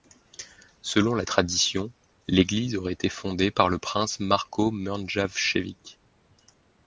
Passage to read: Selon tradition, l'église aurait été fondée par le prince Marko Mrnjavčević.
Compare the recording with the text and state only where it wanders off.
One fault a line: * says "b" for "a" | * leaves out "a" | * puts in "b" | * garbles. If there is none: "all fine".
* puts in "la"